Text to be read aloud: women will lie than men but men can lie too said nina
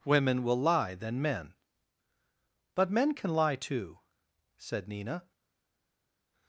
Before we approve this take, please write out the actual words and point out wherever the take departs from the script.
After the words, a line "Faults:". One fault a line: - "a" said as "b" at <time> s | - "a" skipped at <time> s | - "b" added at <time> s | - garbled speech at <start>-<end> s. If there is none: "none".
women will lie than men but men can lie too said nina
Faults:
none